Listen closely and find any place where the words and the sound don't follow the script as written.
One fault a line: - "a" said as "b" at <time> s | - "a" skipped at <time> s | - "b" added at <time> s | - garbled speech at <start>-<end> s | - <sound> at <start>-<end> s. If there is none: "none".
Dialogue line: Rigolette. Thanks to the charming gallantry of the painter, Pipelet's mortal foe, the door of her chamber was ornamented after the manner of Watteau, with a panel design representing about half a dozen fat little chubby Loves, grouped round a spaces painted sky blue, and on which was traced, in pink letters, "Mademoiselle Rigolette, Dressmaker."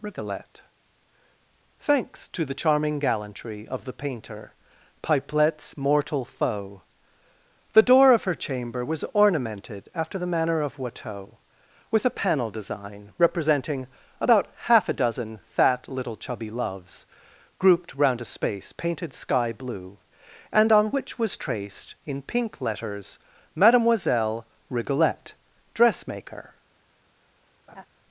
- "spaces" said as "space" at 18.2 s
- laugh at 27.7-27.9 s